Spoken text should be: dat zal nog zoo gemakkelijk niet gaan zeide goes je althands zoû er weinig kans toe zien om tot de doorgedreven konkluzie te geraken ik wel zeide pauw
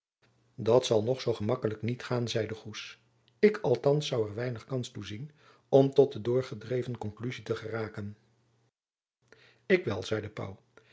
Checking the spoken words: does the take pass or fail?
fail